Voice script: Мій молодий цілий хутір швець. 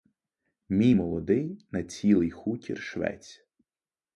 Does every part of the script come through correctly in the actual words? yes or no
no